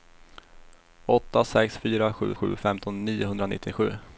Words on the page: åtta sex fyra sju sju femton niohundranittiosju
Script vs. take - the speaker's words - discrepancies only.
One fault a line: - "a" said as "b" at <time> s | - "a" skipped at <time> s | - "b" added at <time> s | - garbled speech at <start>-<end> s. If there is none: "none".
none